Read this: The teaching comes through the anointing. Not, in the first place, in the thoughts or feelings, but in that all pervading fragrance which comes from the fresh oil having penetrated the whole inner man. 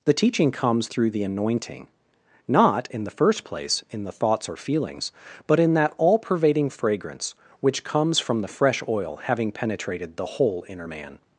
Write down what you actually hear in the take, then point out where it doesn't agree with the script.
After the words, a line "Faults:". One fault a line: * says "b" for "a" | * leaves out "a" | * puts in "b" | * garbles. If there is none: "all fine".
The teaching comes through the anointing. Not, in the first place, in the thoughts or feelings, but in that all pervading fragrance which comes from the fresh oil having penetrated the whole inner man.
Faults:
all fine